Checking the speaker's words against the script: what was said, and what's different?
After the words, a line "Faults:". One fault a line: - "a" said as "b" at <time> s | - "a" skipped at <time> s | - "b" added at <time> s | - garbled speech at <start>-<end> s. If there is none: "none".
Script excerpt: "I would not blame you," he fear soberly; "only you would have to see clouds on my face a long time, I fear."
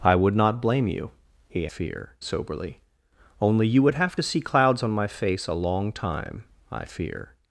"I would not blame you," he fear soberly; "only you would have to see clouds on my face a long time, I fear."
Faults:
none